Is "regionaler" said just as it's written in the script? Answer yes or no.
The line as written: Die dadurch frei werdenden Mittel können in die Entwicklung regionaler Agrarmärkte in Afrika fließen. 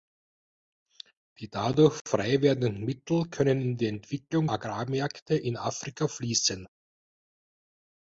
no